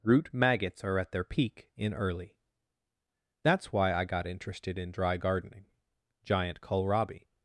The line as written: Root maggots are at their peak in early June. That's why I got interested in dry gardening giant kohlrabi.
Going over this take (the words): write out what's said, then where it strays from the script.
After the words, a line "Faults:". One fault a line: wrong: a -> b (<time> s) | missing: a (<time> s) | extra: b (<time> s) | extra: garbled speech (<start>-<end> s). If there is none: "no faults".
Root maggots are at their peak in early. That's why I got interested in dry gardening giant kohlrabi.
Faults:
missing: June (2.4 s)